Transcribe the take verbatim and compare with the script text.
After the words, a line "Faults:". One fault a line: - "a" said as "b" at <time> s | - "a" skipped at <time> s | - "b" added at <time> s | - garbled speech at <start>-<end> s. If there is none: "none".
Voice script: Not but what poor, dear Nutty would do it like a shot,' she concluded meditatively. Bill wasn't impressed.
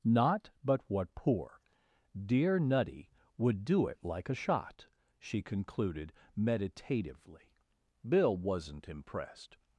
Not but what poor, dear Nutty would do it like a shot,' she concluded meditatively. Bill wasn't impressed.
Faults:
none